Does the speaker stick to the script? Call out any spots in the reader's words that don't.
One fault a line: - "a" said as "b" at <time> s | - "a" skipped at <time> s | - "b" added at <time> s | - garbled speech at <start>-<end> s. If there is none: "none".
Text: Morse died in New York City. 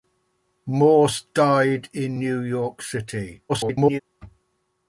- garbled speech at 3.5-4.0 s